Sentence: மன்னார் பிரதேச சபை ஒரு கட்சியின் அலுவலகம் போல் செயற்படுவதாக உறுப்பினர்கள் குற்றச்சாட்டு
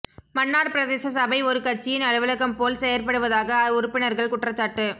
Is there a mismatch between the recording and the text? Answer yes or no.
no